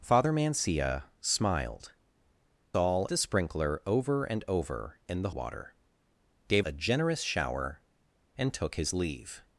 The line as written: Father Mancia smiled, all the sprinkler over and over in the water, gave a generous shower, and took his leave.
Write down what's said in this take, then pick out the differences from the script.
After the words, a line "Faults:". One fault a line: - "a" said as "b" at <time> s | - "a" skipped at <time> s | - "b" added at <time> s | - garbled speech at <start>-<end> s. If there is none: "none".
Father Mancia smiled, all the sprinkler over and over in the water, gave a generous shower, and took his leave.
Faults:
none